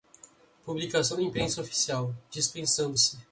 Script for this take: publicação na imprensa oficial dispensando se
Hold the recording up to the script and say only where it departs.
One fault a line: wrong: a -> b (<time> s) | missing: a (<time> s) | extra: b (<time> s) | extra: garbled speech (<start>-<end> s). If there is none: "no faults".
no faults